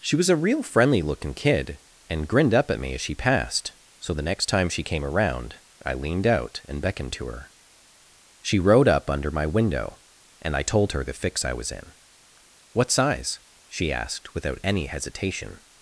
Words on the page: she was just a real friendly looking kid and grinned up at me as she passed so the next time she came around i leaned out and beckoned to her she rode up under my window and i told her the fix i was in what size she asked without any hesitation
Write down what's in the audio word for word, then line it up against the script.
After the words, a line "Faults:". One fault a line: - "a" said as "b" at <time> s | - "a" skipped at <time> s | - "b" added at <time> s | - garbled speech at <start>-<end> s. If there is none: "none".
she was a real friendly looking kid and grinned up at me as she passed so the next time she came around i leaned out and beckoned to her she rode up under my window and i told her the fix i was in what size she asked without any hesitation
Faults:
- "just" skipped at 0.3 s